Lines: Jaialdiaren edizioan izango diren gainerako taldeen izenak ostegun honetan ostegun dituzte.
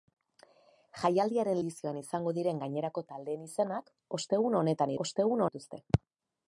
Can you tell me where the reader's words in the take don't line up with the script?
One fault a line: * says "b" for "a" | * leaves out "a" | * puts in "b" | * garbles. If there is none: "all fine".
all fine